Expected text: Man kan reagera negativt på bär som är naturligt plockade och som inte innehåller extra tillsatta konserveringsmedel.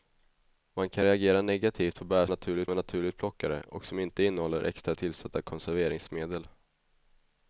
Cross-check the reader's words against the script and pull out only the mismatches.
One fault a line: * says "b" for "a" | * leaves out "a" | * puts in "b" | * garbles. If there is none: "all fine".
* says "naturligt" for "som"